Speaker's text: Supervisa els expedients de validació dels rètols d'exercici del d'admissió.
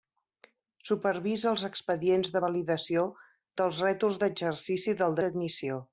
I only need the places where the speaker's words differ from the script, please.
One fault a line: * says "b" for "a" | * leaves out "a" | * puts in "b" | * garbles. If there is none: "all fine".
all fine